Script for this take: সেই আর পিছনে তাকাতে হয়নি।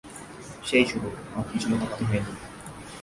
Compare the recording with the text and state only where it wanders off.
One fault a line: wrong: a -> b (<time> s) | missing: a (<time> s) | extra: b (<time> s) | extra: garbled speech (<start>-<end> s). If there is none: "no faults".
extra: শুরু (0.8 s)